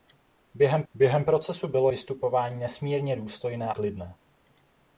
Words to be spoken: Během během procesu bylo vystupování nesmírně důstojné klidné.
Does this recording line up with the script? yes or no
yes